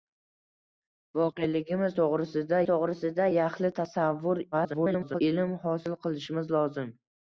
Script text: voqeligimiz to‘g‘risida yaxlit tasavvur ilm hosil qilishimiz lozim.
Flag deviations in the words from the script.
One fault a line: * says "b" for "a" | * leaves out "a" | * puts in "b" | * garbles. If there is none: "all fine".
* puts in "to‘g‘risida"
* garbles